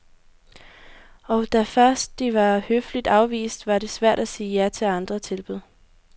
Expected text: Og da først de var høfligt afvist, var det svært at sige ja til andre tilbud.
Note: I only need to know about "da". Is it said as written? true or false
true